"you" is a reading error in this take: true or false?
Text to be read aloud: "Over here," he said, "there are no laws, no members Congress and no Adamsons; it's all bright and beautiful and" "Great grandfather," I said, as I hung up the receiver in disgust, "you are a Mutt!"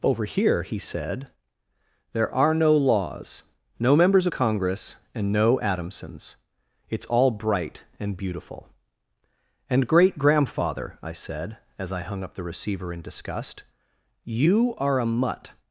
false